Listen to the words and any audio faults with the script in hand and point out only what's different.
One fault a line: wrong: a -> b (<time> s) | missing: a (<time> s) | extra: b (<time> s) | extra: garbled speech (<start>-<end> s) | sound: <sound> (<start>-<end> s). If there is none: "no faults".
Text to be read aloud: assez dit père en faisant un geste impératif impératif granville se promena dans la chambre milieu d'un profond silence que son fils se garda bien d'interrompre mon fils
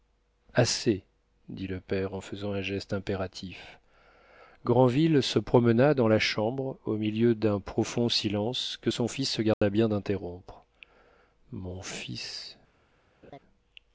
extra: le (1.7 s)
missing: impératif (3.8 s)
extra: au (6.8 s)
sound: dropout (9.5-9.6 s)
sound: laugh (13.2-13.4 s)